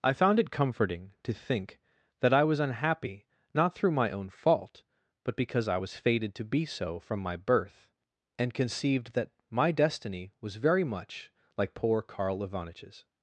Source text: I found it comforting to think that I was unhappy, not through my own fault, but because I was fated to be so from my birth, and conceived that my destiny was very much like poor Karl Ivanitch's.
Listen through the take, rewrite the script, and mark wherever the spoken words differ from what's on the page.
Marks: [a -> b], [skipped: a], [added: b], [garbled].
I found it comforting to think that I was unhappy, not through my own fault, but because I was fated to be so from my birth, and conceived that my destiny was very much like poor Karl Ivanitch's.